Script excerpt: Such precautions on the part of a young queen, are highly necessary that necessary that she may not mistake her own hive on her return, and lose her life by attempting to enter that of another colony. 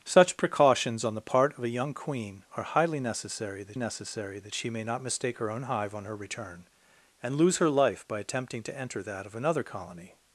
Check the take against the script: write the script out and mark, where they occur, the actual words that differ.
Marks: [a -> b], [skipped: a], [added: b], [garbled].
Such precautions on the part of a young queen, are highly necessary that necessary that she may not mistake her own hive on her return, and lose her life by attempting to enter that of another colony.